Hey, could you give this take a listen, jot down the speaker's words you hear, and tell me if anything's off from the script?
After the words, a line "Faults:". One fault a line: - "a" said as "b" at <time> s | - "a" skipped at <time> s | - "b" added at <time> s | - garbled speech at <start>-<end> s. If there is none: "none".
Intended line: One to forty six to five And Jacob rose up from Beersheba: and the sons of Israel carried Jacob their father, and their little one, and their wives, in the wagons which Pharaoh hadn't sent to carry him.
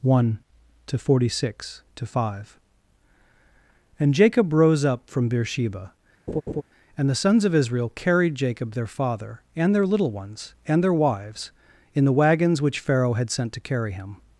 One to forty six to five And Jacob rose up from Beersheba: and the sons of Israel carried Jacob their father, and their little ones, and their wives, in the wagons which Pharaoh had sent to carry him.
Faults:
- "one" said as "ones" at 10.1 s
- "hadn't" said as "had" at 13.1 s